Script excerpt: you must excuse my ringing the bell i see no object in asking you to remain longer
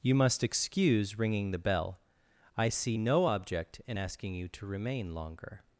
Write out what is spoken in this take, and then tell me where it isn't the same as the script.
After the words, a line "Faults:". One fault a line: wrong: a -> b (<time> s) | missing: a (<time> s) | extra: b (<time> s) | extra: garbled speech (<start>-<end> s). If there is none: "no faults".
you must excuse ringing the bell i see no object in asking you to remain longer
Faults:
missing: my (1.2 s)